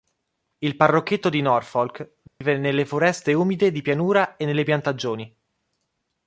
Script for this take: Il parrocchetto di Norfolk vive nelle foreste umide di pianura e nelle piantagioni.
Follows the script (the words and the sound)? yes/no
no